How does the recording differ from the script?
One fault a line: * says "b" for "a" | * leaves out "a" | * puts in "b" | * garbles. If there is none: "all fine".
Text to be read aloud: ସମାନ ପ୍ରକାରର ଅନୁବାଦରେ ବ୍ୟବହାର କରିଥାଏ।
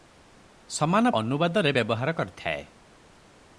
* leaves out "ପ୍ରକାରର"